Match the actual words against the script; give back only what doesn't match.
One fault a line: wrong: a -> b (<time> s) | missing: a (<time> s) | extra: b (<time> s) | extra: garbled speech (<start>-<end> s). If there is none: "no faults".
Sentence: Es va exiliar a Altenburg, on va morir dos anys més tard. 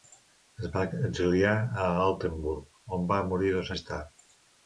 missing: anys (3.7 s)